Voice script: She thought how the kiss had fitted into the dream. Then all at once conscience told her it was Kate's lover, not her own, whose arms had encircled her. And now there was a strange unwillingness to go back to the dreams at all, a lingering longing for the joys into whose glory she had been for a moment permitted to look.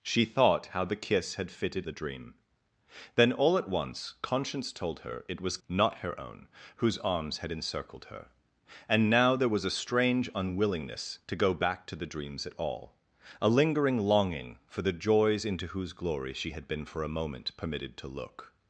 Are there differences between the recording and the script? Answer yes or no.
yes